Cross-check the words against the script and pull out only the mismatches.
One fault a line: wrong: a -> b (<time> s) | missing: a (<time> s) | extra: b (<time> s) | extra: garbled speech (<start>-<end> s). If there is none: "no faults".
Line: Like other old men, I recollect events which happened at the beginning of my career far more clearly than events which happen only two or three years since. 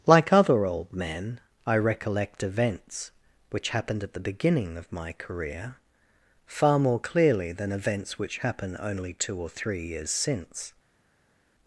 no faults